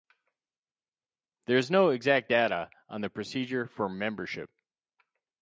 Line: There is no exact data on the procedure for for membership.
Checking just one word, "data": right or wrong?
right